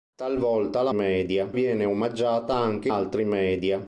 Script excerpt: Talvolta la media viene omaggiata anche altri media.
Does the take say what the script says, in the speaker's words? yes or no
yes